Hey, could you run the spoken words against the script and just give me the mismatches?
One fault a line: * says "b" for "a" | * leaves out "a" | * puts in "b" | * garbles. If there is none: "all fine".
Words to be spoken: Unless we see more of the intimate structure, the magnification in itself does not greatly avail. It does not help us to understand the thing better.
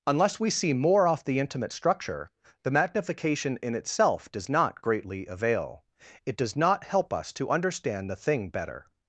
* says "off" for "of"